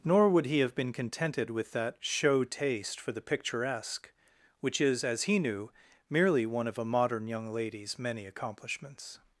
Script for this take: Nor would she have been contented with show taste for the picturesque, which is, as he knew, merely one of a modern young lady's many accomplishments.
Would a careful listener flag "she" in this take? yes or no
yes